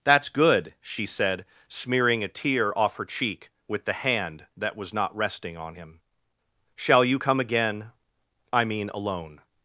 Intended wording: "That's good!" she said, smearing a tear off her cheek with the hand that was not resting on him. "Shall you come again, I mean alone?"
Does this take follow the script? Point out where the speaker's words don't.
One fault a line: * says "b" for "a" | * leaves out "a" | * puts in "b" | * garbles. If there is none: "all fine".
all fine